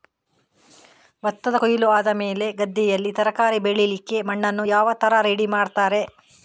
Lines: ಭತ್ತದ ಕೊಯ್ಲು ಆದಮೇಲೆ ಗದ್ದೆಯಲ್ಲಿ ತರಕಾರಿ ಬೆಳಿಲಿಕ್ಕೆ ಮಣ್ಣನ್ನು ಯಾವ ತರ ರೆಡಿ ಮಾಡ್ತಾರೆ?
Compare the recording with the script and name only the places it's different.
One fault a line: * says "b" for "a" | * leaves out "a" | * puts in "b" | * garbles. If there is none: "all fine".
all fine